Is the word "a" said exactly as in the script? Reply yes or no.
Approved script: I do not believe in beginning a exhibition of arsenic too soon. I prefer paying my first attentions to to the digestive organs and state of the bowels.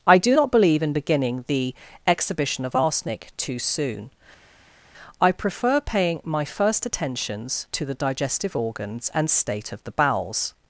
no